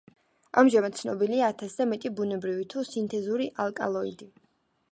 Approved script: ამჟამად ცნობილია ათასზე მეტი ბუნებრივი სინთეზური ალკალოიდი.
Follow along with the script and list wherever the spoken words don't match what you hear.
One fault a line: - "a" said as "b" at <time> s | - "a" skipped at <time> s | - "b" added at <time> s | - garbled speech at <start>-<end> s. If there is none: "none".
- "თუ" added at 2.8 s